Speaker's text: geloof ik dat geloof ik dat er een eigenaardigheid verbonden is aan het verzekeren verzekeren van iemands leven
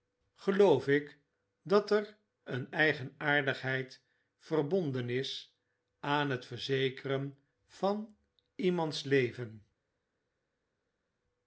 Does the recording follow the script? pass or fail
fail